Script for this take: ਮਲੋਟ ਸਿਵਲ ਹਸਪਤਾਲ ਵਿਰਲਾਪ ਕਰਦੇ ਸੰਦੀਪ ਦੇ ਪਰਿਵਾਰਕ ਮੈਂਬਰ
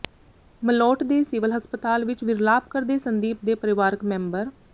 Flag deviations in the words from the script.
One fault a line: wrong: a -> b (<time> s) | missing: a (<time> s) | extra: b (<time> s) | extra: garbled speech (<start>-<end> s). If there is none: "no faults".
extra: ਦੇ (1.0 s)
extra: ਵਿੱਚ (2.0 s)